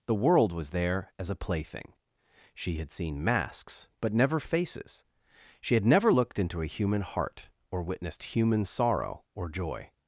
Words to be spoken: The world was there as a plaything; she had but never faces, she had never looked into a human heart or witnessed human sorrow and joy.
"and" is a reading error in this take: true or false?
true